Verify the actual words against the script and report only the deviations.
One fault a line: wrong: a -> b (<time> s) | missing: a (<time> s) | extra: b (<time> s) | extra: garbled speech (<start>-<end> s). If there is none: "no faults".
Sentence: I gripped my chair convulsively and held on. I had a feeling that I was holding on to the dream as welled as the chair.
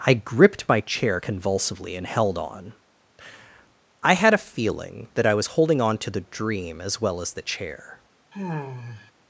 wrong: welled -> well (7.0 s)